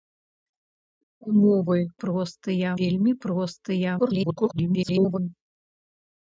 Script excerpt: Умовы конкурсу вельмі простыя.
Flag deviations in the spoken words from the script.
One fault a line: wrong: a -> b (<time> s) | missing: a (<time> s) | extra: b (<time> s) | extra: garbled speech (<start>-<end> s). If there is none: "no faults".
wrong: конкурсу -> простыя (2.0 s)
extra: garbled speech (4.0-5.2 s)